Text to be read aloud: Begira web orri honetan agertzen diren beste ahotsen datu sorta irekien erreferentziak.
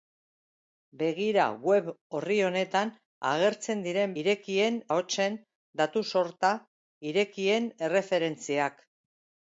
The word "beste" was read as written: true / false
false